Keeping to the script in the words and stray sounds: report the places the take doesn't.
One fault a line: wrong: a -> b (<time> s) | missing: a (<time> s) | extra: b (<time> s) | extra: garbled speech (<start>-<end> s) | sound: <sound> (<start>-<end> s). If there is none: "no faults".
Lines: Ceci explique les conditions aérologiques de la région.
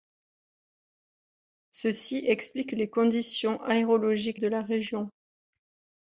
no faults